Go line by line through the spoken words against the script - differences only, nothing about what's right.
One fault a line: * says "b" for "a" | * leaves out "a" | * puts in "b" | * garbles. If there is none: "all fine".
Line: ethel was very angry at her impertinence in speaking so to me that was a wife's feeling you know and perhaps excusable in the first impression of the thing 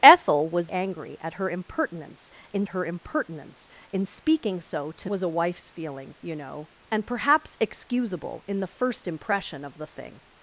* leaves out "very"
* puts in "her impertinence in"
* leaves out "me that"